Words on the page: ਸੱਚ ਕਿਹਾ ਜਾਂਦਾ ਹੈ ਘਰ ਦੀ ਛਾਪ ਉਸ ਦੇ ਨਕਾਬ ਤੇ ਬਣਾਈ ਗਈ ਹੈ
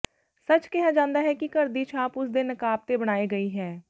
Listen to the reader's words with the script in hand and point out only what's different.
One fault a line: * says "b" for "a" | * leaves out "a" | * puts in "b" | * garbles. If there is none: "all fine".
* puts in "ਕਿ"